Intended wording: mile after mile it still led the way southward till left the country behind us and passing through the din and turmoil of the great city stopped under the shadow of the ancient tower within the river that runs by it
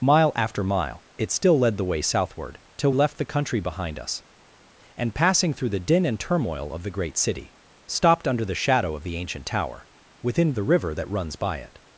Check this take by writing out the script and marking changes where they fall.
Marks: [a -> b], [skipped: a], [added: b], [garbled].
mile after mile it still led the way southward till left the country behind us and passing through the din and turmoil of the great city stopped under the shadow of the ancient tower within the river that runs by it